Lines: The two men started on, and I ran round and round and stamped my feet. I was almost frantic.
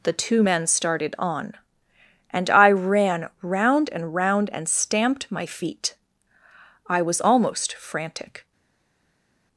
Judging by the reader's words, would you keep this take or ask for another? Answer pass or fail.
pass